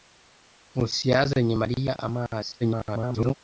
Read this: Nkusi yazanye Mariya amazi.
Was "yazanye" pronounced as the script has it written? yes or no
yes